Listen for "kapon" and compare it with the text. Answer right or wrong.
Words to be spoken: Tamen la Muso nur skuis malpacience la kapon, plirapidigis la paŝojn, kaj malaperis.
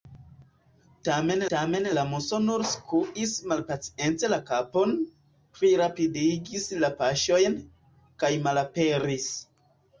right